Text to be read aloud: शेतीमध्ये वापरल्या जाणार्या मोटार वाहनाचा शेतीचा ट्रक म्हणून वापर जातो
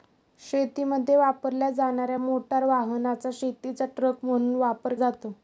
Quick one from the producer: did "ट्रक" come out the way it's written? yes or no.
yes